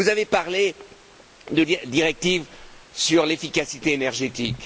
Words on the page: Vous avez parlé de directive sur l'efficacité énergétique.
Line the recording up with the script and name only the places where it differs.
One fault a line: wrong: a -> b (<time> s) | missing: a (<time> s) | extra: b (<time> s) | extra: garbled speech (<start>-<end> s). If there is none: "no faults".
no faults